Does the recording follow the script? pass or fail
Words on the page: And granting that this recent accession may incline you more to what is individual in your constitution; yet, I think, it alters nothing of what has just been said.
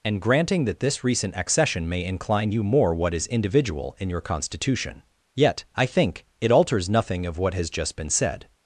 fail